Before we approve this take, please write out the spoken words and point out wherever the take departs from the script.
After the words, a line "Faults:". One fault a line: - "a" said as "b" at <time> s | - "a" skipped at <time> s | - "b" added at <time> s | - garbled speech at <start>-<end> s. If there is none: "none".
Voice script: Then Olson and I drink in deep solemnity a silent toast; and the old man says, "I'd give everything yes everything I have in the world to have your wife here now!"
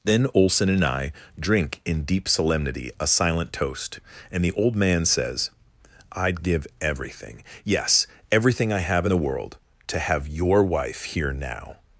Then Olson and I drink in deep solemnity a silent toast; and the old man says, "I'd give everything yes everything I have in the world to have your wife here now!"
Faults:
none